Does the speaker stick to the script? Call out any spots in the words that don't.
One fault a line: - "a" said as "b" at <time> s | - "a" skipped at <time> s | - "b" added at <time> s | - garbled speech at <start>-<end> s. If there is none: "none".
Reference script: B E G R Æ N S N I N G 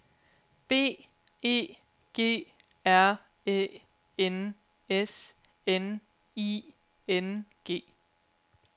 none